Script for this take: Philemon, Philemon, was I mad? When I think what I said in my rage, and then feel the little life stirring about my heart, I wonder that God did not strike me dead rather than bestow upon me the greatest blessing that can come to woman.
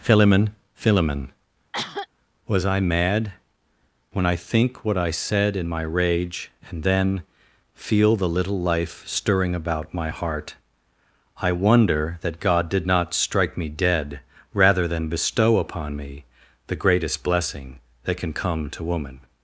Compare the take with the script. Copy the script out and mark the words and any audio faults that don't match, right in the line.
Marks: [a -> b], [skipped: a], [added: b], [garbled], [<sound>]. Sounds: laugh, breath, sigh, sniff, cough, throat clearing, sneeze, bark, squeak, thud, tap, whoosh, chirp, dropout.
Philemon, Philemon, [cough] was I mad? When I think what I said in my rage, and then feel the little life stirring about my heart, I wonder that God did not strike me dead rather than bestow upon me the greatest blessing that can come to woman.